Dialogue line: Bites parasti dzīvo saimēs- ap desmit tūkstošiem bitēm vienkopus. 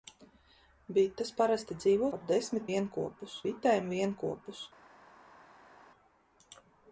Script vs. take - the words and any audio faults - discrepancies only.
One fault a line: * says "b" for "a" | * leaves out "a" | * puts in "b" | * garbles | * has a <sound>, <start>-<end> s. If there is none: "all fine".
* leaves out "saimēs"
* says "vienkopus" for "tūkstošiem"